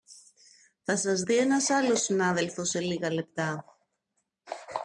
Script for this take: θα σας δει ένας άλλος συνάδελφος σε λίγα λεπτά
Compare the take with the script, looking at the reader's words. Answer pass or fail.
pass